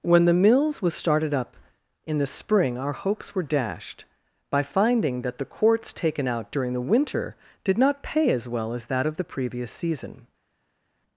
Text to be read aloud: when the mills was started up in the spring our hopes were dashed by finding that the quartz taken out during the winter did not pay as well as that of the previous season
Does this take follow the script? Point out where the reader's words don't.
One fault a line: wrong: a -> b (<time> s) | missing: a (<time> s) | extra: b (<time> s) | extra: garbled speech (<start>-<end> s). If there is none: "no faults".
no faults